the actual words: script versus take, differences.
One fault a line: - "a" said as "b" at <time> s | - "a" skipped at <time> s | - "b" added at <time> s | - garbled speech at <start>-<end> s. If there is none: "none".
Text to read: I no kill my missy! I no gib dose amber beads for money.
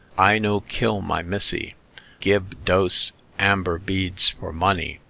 - "I no" skipped at 1.8 s